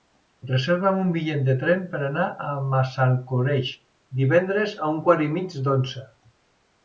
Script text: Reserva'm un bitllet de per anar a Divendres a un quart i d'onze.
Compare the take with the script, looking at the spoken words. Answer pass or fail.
fail